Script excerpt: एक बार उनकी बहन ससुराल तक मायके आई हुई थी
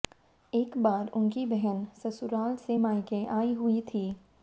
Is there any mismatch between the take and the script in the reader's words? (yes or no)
yes